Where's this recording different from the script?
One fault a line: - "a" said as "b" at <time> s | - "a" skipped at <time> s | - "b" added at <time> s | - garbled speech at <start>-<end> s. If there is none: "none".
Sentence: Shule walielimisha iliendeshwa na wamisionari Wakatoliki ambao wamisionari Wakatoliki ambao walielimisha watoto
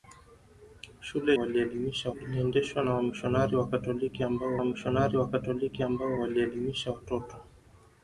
none